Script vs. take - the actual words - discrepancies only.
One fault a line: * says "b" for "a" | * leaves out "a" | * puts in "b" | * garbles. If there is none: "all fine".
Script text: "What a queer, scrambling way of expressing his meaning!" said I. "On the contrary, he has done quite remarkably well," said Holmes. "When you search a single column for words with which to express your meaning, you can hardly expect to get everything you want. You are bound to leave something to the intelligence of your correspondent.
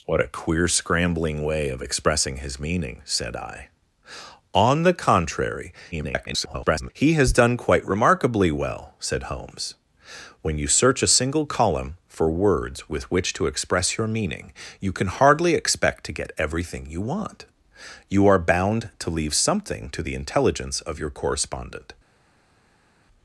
* garbles